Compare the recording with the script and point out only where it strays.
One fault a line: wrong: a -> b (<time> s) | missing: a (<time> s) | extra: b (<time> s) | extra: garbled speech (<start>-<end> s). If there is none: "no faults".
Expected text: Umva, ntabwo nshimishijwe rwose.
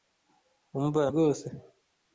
missing: ntabwo nshimishijwe (1.0 s)